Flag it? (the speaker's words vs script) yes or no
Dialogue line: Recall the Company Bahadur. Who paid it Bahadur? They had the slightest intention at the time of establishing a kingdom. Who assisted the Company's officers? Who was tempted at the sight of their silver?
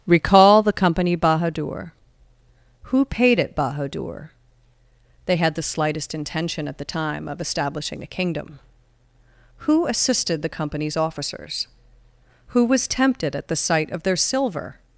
no